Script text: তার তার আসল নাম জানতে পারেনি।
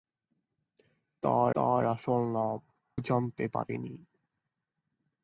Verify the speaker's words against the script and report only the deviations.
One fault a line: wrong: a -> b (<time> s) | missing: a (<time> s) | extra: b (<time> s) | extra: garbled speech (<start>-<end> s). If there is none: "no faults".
no faults